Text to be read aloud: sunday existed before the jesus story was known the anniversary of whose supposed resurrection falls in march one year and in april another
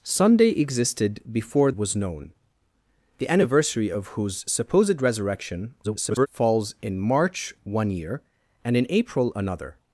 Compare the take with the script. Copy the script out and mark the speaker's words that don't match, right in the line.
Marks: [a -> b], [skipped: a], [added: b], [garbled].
sunday existed before [skipped: the jesus story] was known the anniversary of whose supposed resurrection [garbled] falls in march one year and in april another